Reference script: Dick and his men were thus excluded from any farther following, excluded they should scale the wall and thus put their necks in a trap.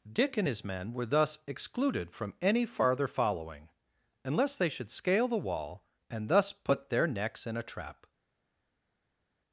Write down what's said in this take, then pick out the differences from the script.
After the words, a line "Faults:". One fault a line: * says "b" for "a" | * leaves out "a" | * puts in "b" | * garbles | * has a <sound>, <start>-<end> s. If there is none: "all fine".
Dick and his men were thus excluded from any farther following, unless they should scale the wall and thus put their necks in a trap.
Faults:
* says "unless" for "excluded"